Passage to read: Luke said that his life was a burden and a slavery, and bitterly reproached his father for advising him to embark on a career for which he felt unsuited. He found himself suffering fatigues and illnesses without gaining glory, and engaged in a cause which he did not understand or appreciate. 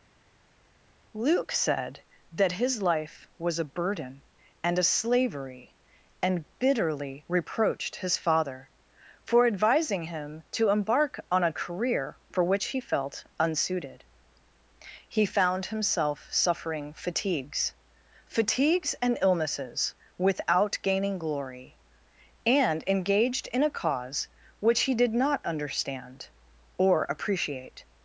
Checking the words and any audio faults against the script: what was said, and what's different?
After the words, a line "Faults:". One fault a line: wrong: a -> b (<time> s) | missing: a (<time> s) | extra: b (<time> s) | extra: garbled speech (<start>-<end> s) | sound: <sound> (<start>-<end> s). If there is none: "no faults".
Luke said that his life was a burden and a slavery, and bitterly reproached his father for advising him to embark on a career for which he felt unsuited. He found himself suffering fatigues fatigues and illnesses without gaining glory, and engaged in a cause which he did not understand or appreciate.
Faults:
extra: fatigues (18.3 s)